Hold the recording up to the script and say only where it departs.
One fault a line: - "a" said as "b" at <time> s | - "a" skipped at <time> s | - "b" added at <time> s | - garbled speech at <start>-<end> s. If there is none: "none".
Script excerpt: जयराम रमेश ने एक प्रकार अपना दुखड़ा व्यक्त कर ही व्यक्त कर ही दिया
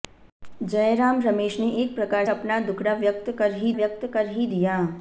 none